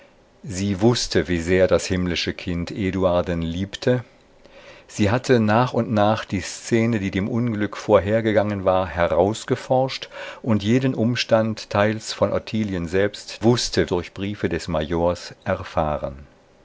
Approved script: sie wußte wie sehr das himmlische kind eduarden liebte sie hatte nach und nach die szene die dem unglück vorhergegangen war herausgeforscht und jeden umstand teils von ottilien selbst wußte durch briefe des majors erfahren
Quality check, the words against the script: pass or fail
pass